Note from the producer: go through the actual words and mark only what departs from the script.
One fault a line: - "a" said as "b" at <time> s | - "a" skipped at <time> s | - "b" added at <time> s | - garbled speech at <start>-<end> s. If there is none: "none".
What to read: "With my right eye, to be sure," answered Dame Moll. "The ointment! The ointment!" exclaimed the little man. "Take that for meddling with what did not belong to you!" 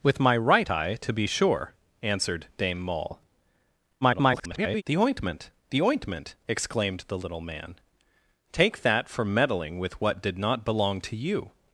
- garbled speech at 4.0-4.8 s